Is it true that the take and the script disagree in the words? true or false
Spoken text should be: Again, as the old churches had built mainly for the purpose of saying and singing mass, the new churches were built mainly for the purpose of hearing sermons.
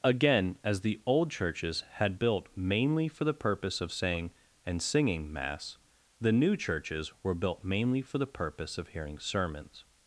false